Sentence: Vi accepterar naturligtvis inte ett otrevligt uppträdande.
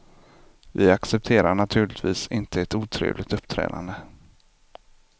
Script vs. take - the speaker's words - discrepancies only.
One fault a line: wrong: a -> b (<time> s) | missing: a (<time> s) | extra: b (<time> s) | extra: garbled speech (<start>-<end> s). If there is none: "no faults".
no faults